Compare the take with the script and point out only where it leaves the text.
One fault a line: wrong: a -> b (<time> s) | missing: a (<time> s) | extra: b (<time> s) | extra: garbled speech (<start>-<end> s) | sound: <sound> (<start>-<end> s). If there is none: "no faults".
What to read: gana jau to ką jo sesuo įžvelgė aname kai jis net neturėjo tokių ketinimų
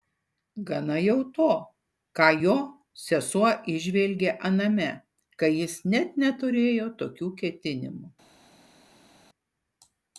no faults